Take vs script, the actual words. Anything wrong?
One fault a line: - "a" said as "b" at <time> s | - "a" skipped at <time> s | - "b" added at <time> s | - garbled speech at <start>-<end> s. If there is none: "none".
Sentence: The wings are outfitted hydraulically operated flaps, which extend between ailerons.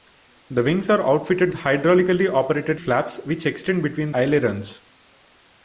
none